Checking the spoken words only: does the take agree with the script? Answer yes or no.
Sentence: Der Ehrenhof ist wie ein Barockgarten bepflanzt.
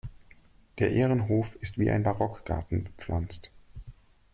yes